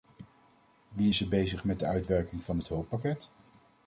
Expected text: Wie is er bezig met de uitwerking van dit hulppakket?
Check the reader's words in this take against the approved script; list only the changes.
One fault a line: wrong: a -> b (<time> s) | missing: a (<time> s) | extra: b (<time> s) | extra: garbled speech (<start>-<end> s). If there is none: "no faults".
no faults